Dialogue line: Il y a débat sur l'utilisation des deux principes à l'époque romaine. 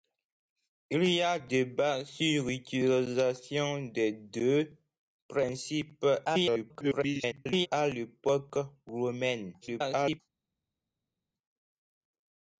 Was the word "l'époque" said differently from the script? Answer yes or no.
no